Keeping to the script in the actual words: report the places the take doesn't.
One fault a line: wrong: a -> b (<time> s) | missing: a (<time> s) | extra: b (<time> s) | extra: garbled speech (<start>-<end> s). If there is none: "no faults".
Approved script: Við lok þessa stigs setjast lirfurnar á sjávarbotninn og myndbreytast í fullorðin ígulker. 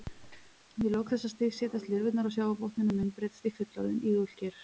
no faults